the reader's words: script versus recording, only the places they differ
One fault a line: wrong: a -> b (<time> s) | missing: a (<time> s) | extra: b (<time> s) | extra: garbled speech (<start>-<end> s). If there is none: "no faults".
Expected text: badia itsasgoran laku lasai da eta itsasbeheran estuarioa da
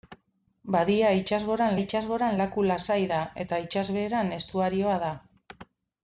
extra: itsasgoran (1.8 s)